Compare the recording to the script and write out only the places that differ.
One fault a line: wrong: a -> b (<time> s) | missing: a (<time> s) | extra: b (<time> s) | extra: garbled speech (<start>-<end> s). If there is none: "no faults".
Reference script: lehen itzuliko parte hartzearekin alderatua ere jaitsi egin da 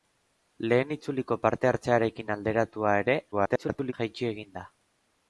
extra: garbled speech (3.3-3.9 s)